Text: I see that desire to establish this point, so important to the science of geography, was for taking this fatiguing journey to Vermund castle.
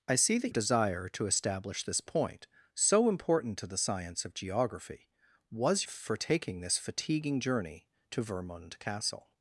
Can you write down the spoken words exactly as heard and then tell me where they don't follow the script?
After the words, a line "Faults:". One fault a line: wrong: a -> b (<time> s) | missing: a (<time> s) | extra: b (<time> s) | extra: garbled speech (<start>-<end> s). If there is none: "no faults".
I see that desire to establish this point, so important to the science of geography, was for taking this fatiguing journey to Vermund castle.
Faults:
no faults